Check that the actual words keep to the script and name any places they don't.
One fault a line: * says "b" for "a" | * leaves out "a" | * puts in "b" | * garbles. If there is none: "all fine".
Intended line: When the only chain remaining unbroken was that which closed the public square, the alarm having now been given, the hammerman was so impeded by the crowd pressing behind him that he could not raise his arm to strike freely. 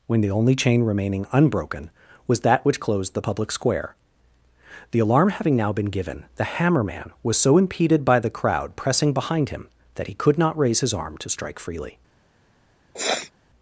all fine